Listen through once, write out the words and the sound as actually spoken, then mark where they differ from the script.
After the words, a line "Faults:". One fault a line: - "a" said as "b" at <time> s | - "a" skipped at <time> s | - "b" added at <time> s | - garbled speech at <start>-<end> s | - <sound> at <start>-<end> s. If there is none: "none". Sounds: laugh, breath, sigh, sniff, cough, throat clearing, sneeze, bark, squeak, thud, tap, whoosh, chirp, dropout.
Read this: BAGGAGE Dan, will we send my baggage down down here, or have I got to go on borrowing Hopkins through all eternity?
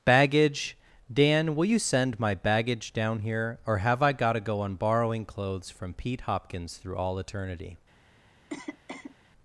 BAGGAGE Dan, will you send my baggage down here, or have I got to go on borrowing clothes from Pete Hopkins through all eternity?
Faults:
- "we" said as "you" at 1.6 s
- "down" skipped at 3.2 s
- "clothes from Pete" added at 5.2 s
- cough at 8.5-9.2 s